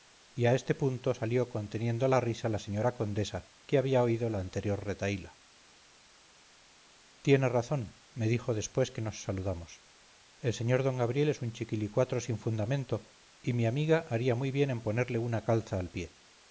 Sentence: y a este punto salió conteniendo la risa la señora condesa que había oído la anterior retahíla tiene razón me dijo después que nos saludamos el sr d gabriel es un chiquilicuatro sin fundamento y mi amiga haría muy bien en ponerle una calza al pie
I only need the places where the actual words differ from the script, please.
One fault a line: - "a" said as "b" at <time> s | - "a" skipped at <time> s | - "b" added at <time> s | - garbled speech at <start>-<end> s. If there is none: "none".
none